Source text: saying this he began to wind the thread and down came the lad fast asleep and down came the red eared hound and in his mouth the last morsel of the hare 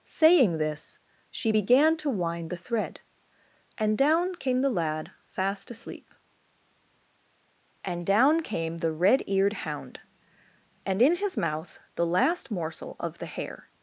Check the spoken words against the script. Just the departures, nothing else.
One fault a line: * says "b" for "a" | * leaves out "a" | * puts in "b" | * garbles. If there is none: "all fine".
* says "she" for "he"